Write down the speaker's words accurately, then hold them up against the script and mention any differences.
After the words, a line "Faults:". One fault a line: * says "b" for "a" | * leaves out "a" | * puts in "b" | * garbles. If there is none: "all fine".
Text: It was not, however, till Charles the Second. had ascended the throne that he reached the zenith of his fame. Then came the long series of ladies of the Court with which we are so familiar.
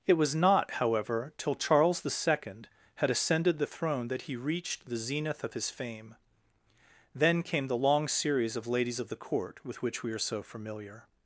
It was not, however, till Charles the Second. had ascended the throne that he reached the zenith of his fame. Then came the long series of ladies of the Court with which we are so familiar.
Faults:
all fine